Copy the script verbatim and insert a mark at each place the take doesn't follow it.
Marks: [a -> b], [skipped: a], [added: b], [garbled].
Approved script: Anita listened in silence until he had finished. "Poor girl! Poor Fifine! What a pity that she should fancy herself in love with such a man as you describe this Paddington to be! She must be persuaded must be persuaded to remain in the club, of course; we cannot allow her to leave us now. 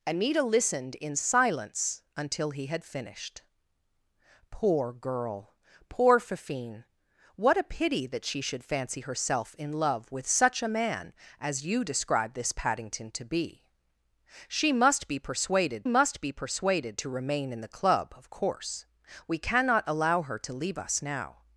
Anita listened in silence until he had finished. "Poor girl! Poor Fifine! What a pity that she should fancy herself in love with such a man as you describe this Paddington to be! She must be persuaded must be persuaded to remain in the club, of course; we cannot allow her to leave us now.